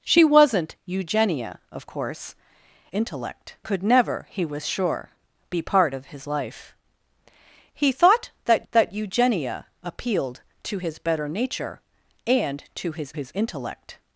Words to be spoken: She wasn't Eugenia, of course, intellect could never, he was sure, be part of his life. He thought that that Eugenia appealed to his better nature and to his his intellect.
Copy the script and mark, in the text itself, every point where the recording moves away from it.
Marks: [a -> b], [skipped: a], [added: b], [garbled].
She wasn't Eugenia, of course, intellect could never, he was sure, be part of his life. He thought that that Eugenia appealed to his better nature and to his his intellect.